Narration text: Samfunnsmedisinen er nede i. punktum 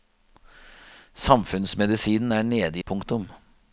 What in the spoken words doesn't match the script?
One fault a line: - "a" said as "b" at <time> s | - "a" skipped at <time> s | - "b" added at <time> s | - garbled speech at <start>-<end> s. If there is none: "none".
none